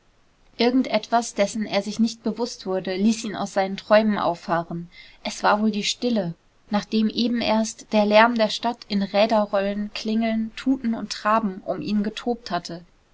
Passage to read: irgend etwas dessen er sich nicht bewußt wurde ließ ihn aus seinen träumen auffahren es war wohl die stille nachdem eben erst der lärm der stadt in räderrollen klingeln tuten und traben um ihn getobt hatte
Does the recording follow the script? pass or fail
pass